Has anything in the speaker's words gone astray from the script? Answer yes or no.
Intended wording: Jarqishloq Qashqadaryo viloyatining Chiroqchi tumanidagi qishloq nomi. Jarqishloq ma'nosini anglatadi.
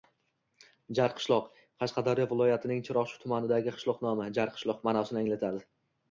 no